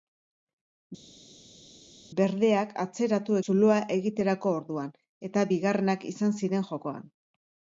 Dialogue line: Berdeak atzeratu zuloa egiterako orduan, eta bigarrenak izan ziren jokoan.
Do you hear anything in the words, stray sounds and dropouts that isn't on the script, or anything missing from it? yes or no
no